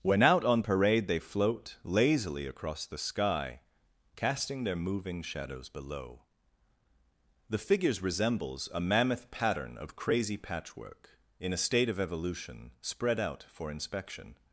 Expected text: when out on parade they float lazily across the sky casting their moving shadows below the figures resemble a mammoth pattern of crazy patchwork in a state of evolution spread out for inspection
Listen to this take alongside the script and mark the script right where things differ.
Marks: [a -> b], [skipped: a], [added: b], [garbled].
when out on parade they float lazily across the sky casting their moving shadows below the figures [resemble -> resembles] a mammoth pattern of crazy patchwork in a state of evolution spread out for inspection